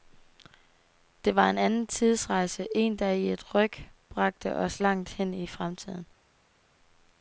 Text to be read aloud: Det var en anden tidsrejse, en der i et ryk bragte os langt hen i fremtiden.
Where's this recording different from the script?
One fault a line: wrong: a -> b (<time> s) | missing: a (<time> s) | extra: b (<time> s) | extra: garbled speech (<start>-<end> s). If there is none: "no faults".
no faults